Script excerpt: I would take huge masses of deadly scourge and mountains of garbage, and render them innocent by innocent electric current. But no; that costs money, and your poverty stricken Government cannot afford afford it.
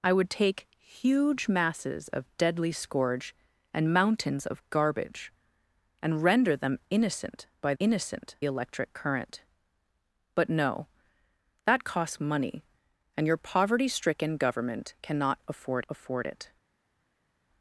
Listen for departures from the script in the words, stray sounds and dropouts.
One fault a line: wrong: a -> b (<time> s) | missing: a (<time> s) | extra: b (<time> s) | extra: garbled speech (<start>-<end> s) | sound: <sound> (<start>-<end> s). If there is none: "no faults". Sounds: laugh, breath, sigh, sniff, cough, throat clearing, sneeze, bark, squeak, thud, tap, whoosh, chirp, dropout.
no faults